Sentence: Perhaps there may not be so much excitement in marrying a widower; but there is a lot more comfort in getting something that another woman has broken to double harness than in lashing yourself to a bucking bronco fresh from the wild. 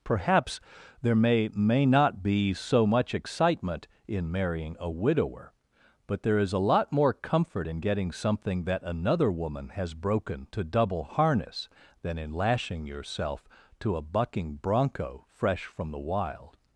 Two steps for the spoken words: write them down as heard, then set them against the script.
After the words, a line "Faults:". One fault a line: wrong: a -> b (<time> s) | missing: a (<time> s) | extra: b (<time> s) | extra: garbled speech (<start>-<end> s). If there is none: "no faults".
Perhaps there may may not be so much excitement in marrying a widower; but there is a lot more comfort in getting something that another woman has broken to double harness than in lashing yourself to a bucking bronco fresh from the wild.
Faults:
extra: may (1.5 s)